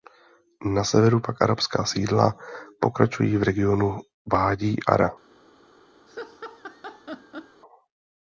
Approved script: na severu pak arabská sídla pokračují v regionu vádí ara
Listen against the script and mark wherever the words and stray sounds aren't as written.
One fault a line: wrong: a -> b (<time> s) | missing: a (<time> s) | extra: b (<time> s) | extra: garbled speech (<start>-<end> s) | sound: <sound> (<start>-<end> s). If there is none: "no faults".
sound: laugh (6.1-7.6 s)